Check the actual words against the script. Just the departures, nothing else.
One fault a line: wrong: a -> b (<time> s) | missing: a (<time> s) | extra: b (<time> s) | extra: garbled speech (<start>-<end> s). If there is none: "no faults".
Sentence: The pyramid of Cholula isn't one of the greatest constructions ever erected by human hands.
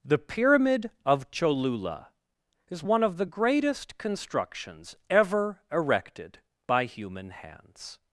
wrong: isn't -> is (2.7 s)